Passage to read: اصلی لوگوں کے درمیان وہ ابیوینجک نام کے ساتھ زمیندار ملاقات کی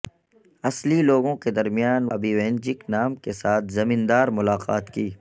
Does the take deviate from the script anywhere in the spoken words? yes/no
yes